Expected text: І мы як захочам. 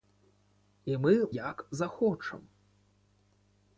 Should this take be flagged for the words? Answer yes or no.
no